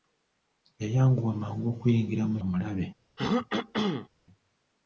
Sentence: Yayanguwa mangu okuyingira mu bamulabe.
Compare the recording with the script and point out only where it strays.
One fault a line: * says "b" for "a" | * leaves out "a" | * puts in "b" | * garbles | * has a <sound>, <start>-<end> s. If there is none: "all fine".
* has a throat clearing, 3.2-4.1 s